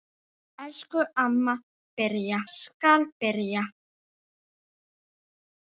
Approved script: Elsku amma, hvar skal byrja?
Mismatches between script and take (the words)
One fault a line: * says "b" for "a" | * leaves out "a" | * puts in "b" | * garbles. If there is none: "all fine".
* says "byrja" for "hvar"